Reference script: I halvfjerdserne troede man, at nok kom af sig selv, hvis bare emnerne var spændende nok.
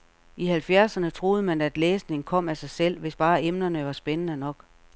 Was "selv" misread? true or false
false